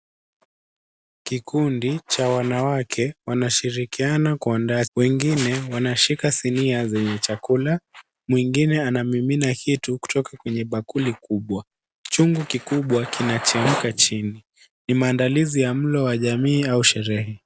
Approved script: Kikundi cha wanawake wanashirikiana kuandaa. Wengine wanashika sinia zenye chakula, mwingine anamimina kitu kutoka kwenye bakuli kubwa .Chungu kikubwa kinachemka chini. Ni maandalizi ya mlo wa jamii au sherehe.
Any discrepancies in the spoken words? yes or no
no